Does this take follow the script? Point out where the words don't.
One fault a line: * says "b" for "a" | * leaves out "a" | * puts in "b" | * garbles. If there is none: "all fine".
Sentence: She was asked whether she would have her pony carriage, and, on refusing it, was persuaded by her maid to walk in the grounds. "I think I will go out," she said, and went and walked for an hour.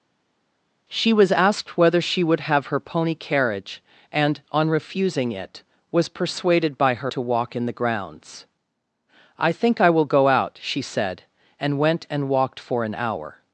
* leaves out "maid"